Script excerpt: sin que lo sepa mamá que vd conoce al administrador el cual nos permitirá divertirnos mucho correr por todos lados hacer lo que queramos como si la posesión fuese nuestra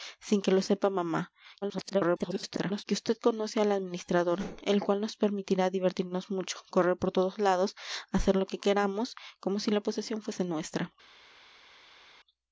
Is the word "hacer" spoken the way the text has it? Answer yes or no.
yes